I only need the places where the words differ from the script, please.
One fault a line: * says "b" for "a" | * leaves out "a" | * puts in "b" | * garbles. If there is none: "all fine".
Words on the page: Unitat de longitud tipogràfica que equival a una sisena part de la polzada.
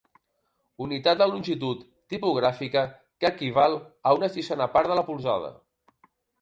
all fine